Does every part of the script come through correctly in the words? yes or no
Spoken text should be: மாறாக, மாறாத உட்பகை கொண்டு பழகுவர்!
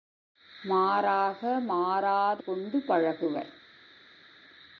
no